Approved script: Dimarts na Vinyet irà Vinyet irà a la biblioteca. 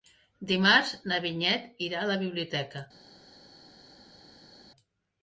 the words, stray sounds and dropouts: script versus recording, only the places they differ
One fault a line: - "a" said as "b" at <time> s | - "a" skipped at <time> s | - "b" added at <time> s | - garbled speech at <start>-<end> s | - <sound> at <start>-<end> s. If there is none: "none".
- "Vinyet irà" skipped at 2.0 s